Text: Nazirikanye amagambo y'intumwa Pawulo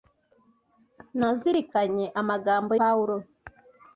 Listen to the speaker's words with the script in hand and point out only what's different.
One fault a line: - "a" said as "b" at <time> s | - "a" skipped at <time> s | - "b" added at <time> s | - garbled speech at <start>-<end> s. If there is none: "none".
- "y'intumwa" skipped at 2.7 s